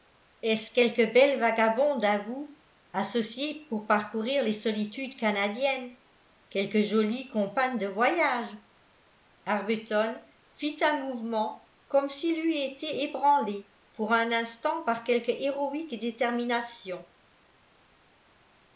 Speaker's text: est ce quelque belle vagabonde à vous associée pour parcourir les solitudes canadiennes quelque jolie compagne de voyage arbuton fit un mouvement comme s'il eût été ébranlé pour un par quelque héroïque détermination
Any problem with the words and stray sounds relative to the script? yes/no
yes